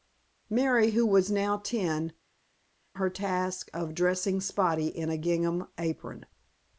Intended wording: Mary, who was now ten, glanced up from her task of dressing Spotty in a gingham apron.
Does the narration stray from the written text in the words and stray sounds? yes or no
yes